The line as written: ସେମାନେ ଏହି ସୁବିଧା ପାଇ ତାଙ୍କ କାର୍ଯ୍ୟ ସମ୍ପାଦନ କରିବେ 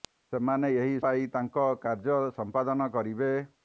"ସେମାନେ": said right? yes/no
yes